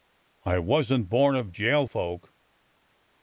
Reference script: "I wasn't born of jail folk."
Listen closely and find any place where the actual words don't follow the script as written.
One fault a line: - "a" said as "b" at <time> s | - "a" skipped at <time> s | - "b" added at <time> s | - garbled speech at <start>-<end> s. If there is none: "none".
none